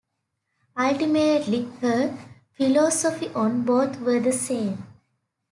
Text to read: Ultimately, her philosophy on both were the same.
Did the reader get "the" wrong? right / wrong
right